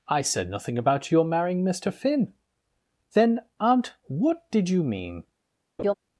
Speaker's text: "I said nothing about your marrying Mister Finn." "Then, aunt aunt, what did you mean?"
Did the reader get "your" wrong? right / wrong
right